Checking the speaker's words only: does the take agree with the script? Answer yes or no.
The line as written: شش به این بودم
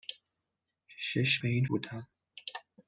yes